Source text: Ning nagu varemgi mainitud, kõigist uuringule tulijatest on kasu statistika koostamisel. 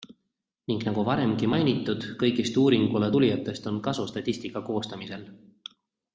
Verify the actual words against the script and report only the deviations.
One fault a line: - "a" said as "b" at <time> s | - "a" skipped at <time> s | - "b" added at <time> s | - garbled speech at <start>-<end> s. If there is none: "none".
none